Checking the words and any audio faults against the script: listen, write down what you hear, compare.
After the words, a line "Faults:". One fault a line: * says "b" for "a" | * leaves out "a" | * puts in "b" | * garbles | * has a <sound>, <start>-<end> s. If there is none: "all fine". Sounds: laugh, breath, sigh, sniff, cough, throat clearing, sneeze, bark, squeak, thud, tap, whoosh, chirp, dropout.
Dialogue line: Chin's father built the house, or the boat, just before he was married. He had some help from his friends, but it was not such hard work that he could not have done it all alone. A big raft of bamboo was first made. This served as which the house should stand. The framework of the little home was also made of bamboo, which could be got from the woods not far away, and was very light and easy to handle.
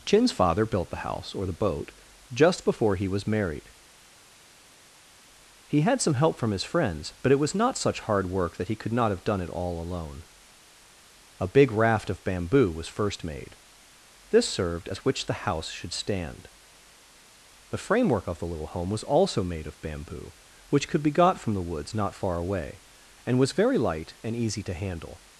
Chin's father built the house, or the boat, just before he was married. He had some help from his friends, but it was not such hard work that he could not have done it all alone. A big raft of bamboo was first made. This served as which the house should stand. The framework of the little home was also made of bamboo, which could be got from the woods not far away, and was very light and easy to handle.
Faults:
all fine